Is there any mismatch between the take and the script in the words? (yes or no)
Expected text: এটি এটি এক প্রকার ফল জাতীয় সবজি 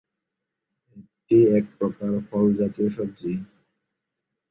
yes